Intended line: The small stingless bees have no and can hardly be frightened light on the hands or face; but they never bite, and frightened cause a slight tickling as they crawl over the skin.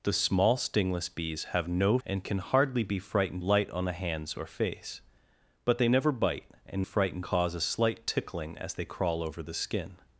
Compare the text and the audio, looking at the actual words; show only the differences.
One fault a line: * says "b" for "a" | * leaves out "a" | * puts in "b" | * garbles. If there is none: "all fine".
all fine